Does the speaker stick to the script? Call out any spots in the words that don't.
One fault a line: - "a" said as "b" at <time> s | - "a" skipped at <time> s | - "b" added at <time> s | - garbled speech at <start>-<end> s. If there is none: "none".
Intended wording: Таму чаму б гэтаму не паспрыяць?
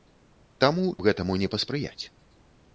- "чаму" skipped at 0.8 s